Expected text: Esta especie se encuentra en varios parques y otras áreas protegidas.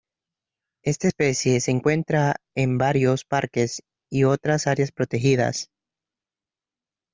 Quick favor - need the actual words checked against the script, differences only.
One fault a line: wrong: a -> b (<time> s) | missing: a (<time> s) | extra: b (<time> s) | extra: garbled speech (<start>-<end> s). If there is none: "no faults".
no faults